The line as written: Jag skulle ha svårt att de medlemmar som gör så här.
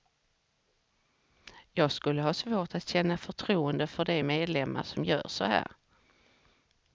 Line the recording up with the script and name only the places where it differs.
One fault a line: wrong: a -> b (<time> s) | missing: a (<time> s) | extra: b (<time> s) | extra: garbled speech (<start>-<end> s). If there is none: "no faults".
extra: känna förtroende för (2.9 s)